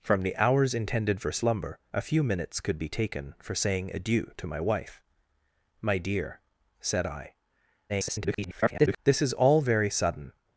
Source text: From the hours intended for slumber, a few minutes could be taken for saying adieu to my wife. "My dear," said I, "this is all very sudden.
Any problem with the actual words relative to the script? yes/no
yes